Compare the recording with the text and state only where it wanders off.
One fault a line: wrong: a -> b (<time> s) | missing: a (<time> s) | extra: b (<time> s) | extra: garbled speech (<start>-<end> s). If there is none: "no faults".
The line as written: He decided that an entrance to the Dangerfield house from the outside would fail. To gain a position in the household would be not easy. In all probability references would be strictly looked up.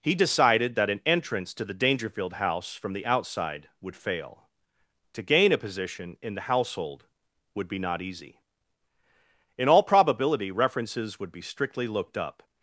no faults